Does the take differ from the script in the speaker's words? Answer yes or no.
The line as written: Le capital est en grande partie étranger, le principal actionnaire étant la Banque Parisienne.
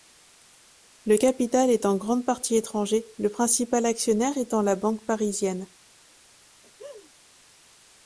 no